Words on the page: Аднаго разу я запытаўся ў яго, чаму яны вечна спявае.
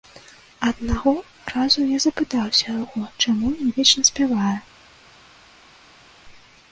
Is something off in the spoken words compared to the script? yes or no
yes